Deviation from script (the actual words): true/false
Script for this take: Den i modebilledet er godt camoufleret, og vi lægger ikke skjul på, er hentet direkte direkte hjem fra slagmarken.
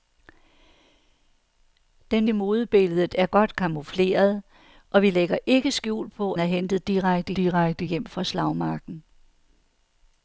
false